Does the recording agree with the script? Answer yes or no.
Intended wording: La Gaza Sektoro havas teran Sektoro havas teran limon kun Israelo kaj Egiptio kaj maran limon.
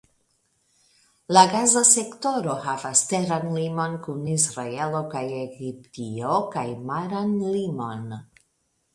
no